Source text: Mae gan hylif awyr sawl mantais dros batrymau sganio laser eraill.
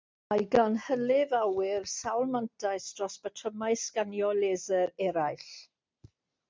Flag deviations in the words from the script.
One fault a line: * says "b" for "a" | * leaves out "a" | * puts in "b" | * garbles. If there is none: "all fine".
all fine